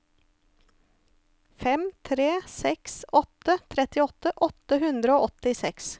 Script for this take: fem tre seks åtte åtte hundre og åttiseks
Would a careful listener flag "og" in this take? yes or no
no